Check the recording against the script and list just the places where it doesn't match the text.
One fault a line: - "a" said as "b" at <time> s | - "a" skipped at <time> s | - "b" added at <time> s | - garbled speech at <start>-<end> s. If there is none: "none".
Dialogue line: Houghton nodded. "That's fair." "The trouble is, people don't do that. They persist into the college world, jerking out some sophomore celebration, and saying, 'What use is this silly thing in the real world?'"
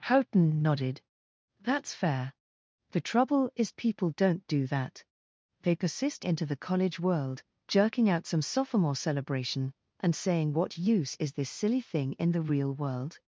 none